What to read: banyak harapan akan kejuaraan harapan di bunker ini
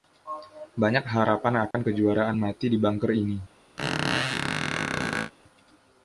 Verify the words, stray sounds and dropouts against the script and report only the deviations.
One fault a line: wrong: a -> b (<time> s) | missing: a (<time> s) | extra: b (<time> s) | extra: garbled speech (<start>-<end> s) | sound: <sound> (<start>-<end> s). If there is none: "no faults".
sound: dropout (1.7-1.7 s)
wrong: harapan -> mati (2.3 s)
sound: squeak (3.8-5.3 s)